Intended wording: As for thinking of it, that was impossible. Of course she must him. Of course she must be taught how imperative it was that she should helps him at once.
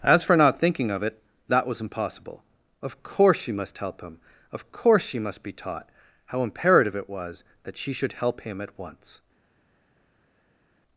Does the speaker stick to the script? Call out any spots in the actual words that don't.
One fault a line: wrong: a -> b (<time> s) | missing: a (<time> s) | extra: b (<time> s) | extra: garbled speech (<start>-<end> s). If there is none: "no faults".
extra: not (0.3 s)
extra: help (3.8 s)
wrong: helps -> help (8.1 s)